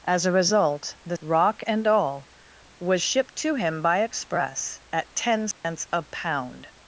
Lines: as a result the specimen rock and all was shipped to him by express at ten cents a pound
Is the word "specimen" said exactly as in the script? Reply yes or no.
no